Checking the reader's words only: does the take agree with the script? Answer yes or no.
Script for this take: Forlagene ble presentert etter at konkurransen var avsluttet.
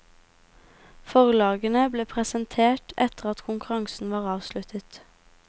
yes